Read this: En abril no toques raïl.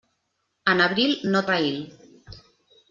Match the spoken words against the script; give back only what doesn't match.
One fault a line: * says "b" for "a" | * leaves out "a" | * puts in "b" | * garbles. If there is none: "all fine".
* leaves out "toques"